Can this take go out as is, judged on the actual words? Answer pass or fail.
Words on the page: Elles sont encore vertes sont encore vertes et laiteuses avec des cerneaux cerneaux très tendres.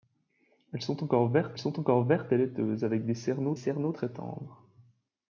pass